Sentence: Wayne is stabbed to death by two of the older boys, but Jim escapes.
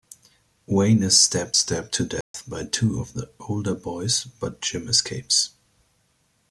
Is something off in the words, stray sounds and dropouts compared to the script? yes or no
yes